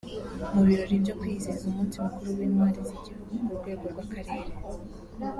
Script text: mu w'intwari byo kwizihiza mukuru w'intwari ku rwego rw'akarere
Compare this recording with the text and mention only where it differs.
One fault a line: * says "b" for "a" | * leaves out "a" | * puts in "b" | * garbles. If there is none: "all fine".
* says "birori" for "w'intwari"
* puts in "umunsi"
* puts in "z'igihugu"